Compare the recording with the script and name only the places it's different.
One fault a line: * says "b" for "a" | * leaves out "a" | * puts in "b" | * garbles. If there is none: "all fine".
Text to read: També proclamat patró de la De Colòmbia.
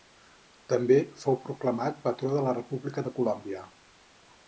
* puts in "fou"
* puts in "República"